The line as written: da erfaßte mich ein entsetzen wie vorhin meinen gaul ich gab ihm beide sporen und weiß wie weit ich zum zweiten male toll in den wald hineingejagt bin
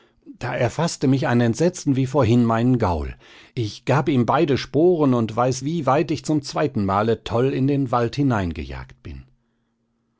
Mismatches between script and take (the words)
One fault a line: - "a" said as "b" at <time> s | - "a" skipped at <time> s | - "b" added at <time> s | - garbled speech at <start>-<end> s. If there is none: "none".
none